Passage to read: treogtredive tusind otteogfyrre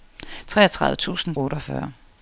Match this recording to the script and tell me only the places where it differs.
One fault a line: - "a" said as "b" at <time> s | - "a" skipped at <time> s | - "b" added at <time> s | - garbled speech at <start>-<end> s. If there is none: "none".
none